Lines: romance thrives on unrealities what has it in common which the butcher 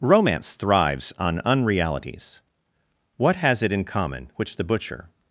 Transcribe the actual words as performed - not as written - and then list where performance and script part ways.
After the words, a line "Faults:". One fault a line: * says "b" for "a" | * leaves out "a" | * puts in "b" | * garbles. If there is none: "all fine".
romance thrives on unrealities what has it in common which the butcher
Faults:
all fine